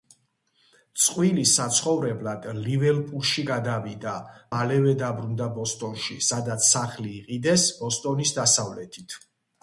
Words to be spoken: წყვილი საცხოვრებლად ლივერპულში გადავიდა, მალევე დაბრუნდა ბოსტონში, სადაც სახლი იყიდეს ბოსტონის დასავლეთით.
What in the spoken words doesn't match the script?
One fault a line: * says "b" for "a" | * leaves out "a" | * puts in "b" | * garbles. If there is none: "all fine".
all fine